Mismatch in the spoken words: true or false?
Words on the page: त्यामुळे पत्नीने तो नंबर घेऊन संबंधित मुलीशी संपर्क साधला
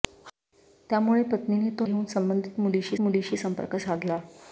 true